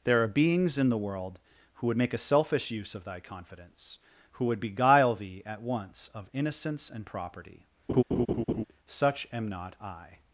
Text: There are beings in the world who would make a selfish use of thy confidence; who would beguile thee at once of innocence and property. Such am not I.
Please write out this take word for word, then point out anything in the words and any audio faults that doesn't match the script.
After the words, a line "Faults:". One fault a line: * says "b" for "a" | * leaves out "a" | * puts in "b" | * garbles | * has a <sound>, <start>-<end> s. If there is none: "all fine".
There are beings in the world who would make a selfish use of thy confidence; who would beguile thee at once of innocence and property. Such am not I.
Faults:
* has a laugh, 7.9-8.6 s